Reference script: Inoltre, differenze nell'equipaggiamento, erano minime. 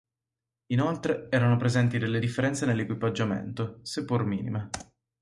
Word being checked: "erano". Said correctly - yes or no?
no